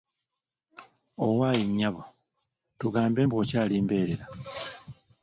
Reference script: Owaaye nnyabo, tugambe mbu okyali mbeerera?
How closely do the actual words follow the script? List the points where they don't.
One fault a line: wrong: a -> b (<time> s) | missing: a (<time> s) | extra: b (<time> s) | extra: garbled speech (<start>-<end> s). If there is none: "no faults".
no faults